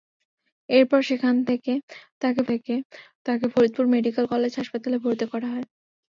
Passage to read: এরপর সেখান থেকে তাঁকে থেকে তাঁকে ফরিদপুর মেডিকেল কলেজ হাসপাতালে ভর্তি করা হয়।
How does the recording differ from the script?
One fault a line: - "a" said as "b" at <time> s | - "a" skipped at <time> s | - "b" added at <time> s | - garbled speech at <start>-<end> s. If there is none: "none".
none